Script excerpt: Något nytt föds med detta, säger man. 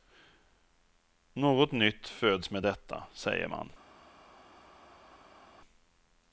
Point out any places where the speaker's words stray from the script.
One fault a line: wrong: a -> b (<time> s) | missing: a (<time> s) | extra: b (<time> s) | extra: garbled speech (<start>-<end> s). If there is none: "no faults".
no faults